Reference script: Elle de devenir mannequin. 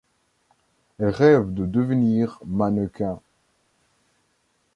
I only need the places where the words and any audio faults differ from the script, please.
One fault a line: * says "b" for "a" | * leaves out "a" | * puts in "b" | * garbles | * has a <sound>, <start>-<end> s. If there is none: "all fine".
* puts in "rêve"